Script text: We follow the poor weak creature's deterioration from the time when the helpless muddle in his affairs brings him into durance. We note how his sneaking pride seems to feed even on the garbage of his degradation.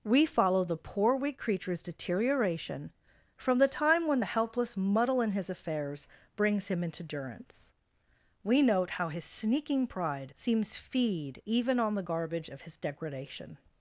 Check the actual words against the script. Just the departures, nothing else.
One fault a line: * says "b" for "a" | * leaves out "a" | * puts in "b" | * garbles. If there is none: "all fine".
* leaves out "to"